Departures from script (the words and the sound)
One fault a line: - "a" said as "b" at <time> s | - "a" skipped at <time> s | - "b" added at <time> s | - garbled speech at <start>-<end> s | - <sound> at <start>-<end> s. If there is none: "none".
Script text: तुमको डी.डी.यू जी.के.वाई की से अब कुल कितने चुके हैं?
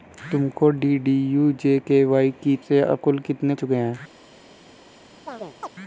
- chirp at 5.3-5.7 s